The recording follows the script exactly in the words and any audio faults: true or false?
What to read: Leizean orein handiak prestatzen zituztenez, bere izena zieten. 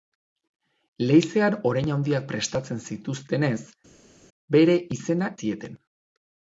true